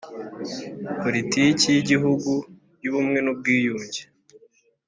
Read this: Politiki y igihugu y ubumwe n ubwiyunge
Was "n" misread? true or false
false